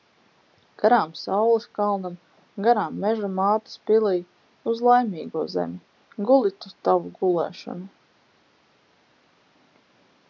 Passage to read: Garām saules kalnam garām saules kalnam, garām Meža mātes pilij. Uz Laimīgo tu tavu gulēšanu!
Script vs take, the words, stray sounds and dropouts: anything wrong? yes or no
yes